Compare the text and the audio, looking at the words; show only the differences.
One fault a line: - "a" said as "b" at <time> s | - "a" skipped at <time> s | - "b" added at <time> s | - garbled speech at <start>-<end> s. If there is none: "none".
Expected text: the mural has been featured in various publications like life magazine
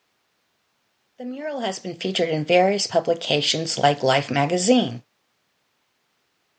none